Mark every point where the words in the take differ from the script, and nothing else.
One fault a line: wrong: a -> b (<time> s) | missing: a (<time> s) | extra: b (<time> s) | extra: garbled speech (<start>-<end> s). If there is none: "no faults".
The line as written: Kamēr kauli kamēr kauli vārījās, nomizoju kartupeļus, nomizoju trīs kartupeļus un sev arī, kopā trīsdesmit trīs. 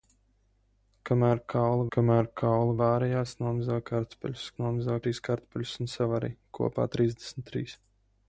no faults